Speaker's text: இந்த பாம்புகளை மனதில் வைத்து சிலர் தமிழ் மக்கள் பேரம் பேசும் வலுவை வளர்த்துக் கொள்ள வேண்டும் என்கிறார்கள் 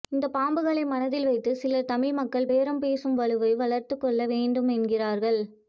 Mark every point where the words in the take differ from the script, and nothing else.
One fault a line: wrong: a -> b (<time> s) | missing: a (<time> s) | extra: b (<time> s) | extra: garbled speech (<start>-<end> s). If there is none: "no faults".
no faults